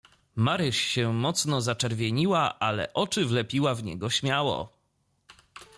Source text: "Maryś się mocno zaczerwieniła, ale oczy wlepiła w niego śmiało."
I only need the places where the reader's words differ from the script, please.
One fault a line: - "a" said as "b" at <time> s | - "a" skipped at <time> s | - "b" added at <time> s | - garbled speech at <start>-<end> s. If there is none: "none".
none